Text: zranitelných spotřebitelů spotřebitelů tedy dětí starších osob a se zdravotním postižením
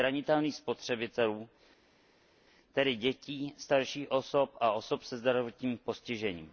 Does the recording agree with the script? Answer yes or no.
no